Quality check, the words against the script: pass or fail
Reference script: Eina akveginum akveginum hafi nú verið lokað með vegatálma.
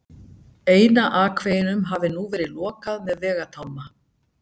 fail